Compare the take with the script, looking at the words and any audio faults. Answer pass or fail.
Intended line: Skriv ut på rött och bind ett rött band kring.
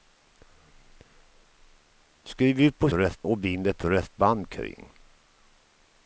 pass